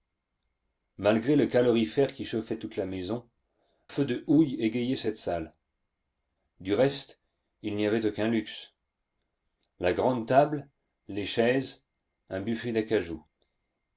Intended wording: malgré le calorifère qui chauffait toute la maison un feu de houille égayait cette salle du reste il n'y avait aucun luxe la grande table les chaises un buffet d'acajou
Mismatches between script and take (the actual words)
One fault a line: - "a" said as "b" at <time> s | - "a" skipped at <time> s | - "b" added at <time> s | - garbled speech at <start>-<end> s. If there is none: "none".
- "un" skipped at 3.3 s